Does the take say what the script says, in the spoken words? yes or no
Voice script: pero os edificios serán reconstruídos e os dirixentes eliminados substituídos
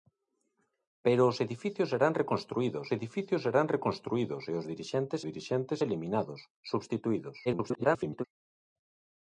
no